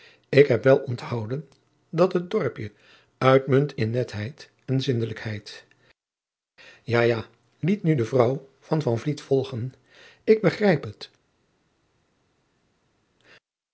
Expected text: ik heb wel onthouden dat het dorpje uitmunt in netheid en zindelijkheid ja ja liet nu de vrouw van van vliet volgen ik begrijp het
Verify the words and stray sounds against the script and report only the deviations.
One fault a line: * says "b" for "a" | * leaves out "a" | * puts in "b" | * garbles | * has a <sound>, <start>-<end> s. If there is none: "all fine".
all fine